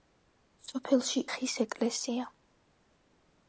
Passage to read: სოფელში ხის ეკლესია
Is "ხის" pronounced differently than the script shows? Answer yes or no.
no